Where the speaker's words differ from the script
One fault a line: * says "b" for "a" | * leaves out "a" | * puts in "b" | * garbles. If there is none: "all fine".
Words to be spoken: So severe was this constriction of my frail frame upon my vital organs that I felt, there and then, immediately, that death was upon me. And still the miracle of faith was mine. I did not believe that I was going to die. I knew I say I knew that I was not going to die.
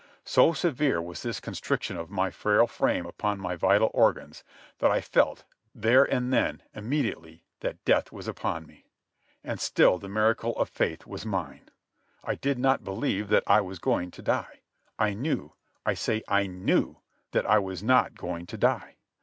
all fine